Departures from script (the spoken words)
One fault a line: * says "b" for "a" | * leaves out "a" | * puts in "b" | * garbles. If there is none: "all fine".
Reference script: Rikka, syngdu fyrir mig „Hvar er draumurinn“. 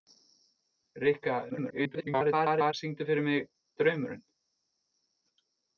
* garbles
* leaves out "Hvar"